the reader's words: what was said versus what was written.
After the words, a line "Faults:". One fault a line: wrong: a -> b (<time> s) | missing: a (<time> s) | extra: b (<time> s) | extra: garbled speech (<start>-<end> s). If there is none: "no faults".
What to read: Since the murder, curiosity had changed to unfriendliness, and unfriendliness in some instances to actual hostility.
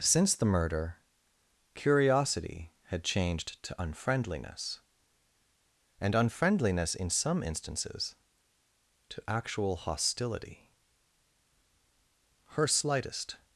Since the murder, curiosity had changed to unfriendliness, and unfriendliness in some instances to actual hostility. Her slightest
Faults:
extra: Her slightest (12.5 s)